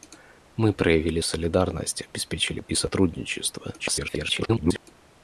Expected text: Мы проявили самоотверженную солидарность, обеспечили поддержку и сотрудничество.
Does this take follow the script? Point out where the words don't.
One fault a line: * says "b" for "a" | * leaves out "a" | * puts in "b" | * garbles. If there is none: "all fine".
* leaves out "самоотверженную"
* leaves out "поддержку"
* garbles